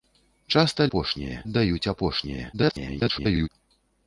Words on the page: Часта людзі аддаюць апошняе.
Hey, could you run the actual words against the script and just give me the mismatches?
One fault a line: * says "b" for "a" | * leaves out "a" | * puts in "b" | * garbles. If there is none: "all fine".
* says "апошняе" for "людзі"
* garbles